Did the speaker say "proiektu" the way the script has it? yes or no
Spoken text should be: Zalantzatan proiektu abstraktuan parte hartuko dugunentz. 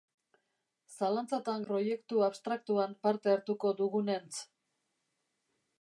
yes